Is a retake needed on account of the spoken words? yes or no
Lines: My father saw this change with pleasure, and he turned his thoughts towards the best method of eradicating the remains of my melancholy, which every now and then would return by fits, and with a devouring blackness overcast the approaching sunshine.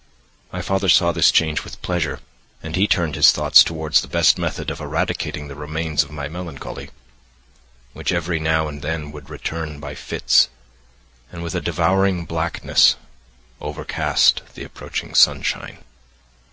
no